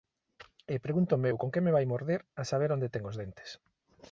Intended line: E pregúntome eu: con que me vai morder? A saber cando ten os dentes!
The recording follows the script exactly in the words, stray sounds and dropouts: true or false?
false